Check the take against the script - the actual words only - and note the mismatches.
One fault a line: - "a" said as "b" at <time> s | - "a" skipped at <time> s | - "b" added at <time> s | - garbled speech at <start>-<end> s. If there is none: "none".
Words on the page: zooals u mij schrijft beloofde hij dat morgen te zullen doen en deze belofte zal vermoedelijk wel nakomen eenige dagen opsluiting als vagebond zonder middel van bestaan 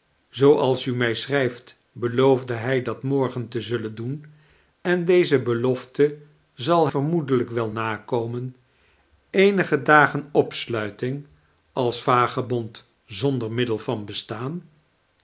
none